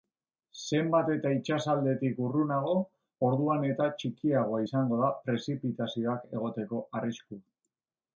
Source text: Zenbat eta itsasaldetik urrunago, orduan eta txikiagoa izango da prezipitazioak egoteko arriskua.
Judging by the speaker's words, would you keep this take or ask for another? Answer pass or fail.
pass